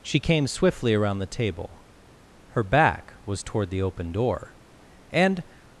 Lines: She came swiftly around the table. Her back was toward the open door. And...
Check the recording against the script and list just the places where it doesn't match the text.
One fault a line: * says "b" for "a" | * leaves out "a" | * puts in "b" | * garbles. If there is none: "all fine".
all fine